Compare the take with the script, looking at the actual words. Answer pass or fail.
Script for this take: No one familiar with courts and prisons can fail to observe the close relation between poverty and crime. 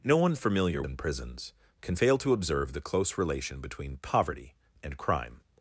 fail